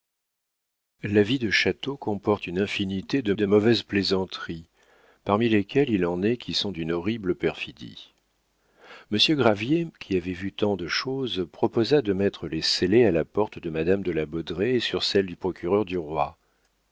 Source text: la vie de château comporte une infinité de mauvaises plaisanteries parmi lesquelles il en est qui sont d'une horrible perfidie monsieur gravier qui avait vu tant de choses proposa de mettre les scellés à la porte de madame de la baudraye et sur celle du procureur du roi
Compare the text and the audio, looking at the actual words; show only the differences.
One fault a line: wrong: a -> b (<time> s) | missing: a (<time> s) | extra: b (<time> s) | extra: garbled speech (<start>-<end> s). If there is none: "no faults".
extra: de (3.3 s)